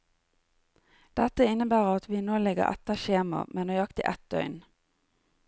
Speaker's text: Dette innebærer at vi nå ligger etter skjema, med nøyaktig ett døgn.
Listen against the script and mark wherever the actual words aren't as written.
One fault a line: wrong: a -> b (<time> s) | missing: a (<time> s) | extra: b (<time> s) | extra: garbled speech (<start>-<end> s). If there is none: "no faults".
no faults